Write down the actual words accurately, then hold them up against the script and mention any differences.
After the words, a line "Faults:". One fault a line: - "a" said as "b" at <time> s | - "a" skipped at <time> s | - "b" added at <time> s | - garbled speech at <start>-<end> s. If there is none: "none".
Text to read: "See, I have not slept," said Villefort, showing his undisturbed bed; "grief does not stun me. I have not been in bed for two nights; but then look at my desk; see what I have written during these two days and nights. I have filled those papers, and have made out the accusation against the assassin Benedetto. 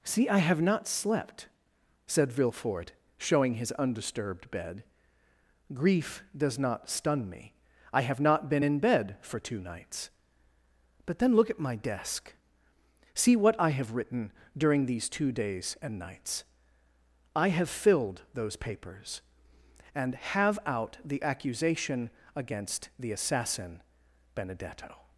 "See, I have not slept," said Villefort, showing his undisturbed bed; "grief does not stun me. I have not been in bed for two nights; but then look at my desk; see what I have written during these two days and nights. I have filled those papers, and have out the accusation against the assassin Benedetto.
Faults:
- "made" skipped at 20.6 s